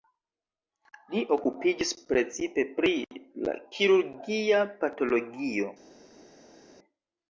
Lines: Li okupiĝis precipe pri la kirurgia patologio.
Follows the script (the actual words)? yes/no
yes